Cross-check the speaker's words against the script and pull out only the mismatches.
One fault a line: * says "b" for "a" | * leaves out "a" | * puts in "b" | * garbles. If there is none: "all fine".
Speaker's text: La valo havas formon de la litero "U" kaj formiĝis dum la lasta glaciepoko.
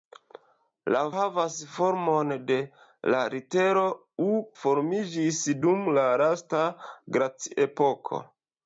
* leaves out "valo"
* leaves out "kaj"